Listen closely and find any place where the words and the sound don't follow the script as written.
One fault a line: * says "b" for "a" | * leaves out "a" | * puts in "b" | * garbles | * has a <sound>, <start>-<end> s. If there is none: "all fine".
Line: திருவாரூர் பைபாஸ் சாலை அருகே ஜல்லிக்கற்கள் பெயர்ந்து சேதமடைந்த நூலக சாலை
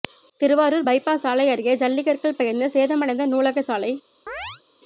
* has a chirp, 4.3-4.6 s